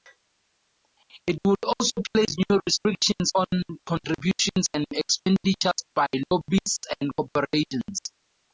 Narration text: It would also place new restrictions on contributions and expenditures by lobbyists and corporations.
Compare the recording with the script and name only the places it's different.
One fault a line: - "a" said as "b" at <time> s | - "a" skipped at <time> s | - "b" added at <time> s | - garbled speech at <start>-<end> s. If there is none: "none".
none